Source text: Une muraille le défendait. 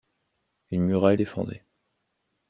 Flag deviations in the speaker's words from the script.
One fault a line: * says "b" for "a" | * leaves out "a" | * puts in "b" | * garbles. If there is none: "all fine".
* leaves out "le"